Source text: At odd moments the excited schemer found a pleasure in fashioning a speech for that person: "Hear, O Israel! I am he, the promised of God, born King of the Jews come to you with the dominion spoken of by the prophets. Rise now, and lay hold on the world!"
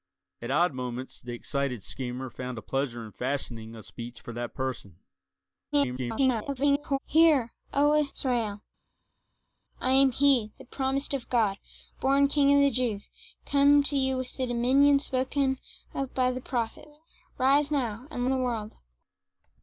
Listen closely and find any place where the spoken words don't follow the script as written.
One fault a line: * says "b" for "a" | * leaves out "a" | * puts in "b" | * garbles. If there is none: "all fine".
* garbles
* leaves out "lay hold on"